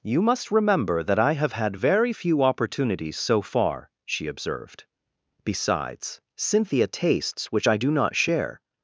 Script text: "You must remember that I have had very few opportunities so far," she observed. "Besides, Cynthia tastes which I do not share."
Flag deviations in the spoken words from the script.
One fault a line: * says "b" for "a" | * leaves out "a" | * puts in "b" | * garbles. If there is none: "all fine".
all fine